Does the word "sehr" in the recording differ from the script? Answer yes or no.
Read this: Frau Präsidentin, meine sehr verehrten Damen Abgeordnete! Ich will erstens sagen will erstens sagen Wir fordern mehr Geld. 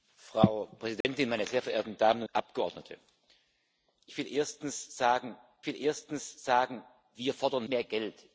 no